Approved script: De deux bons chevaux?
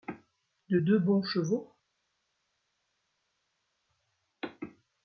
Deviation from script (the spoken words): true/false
false